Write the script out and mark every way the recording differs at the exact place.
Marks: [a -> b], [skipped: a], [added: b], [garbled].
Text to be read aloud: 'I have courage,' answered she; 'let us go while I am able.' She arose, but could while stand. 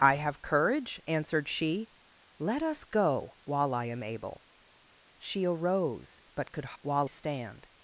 'I have courage,' answered she; 'let us go while I am able.' She arose, but could while stand.